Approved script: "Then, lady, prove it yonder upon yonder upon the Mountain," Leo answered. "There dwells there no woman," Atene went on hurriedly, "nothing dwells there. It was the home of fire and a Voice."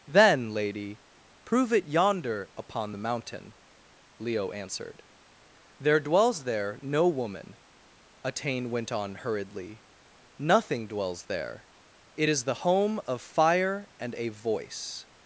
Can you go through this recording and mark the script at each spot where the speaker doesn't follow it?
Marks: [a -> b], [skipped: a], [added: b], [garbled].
"Then, lady, prove it yonder upon [skipped: yonder upon] the Mountain," Leo answered. "There dwells there no woman," Atene went on hurriedly, "nothing dwells there. It [was -> is] the home of fire and a Voice."